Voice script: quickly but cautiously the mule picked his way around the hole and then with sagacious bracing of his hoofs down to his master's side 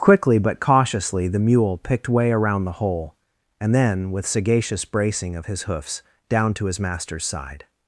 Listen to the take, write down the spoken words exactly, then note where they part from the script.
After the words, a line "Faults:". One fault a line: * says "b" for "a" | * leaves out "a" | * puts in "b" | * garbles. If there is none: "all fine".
quickly but cautiously the mule picked way around the hole and then with sagacious bracing of his hoofs down to his master's side
Faults:
* leaves out "his"